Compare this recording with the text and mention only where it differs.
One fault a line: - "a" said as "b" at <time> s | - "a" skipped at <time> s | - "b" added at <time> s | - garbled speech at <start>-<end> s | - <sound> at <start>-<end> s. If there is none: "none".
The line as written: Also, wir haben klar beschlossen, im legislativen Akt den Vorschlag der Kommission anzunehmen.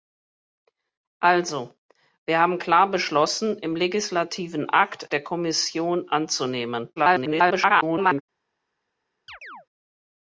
- "den Vorschlag" skipped at 5.1 s
- garbled speech at 7.0-8.2 s
- chirp at 9.3-9.7 s